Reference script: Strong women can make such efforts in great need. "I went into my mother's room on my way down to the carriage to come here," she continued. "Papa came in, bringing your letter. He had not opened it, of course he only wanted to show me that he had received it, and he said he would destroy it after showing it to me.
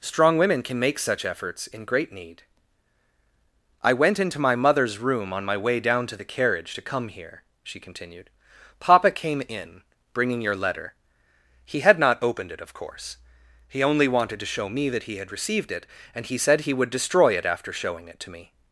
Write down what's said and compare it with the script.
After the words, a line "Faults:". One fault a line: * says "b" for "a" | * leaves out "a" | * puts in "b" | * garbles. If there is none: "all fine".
Strong women can make such efforts in great need. "I went into my mother's room on my way down to the carriage to come here," she continued. "Papa came in, bringing your letter. He had not opened it, of course he only wanted to show me that he had received it, and he said he would destroy it after showing it to me.
Faults:
all fine